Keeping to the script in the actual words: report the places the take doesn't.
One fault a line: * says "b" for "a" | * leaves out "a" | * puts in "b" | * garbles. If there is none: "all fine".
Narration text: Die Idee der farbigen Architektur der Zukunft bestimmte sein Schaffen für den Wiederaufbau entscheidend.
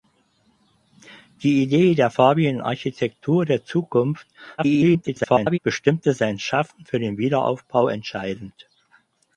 * garbles